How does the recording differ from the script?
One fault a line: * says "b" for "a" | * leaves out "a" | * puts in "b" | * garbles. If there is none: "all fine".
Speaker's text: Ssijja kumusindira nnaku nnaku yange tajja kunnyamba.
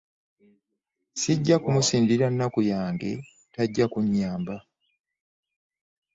* leaves out "nnaku"